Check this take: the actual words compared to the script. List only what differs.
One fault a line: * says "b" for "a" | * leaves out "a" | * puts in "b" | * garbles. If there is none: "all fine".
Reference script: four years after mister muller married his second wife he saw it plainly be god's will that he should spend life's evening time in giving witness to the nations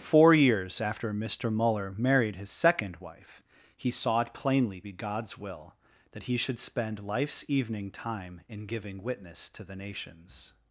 all fine